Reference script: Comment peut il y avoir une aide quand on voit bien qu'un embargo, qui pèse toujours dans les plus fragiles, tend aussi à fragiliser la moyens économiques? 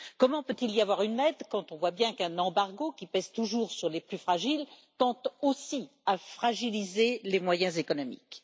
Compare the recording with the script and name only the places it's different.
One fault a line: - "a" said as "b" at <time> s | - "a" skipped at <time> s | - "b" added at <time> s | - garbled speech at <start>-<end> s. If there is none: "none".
- "dans" said as "sur" at 3.7 s
- "la" said as "les" at 7.2 s